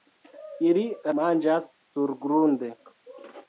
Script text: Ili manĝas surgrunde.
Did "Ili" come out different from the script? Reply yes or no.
no